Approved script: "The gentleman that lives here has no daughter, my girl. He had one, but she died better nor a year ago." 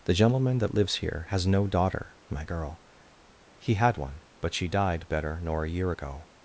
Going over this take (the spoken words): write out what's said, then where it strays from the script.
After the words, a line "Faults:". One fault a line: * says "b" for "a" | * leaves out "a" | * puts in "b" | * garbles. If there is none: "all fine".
"The gentleman that lives here has no daughter, my girl. He had one, but she died better nor a year ago."
Faults:
all fine